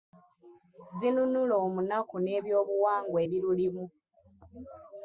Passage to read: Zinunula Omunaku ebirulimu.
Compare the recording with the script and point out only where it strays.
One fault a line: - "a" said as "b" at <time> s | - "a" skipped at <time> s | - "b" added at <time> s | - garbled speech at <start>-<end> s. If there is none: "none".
- "n'ebyobuwangwa" added at 2.2 s